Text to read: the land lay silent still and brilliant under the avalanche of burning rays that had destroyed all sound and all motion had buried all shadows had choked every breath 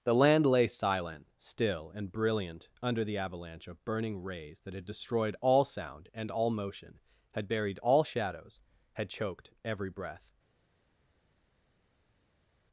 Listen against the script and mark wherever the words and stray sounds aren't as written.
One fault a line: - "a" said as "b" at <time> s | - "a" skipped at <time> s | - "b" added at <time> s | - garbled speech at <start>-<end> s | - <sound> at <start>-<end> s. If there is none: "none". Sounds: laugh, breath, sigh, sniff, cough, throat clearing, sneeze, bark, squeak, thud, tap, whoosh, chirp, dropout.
none